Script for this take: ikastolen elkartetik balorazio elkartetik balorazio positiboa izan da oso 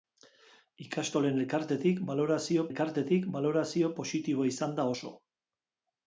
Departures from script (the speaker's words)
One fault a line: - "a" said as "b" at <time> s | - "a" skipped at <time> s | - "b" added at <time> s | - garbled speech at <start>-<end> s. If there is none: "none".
none